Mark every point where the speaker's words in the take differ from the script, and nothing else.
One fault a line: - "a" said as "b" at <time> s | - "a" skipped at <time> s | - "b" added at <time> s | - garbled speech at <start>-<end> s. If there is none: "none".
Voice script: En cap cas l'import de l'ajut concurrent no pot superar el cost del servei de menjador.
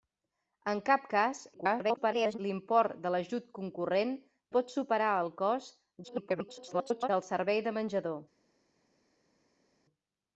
- garbled speech at 1.5-2.4 s
- "no" skipped at 4.1 s
- garbled speech at 6.0-7.1 s